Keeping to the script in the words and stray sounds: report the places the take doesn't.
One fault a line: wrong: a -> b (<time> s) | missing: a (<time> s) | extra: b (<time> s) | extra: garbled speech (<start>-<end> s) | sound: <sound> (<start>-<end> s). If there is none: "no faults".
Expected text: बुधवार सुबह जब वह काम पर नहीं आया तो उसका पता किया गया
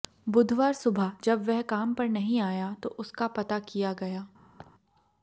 sound: laugh (4.6-4.7 s)